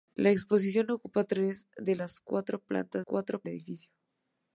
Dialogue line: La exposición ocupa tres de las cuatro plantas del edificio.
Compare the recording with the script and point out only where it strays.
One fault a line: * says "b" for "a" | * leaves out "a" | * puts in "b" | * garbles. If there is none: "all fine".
* says "cuatro" for "del"